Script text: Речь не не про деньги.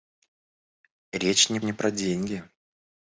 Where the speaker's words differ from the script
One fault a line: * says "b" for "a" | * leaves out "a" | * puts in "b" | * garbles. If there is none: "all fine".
all fine